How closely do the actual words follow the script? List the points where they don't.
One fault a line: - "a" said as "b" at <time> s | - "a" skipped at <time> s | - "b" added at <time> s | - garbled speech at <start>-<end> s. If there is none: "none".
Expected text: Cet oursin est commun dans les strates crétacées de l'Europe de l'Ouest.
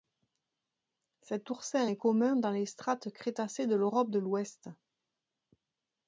none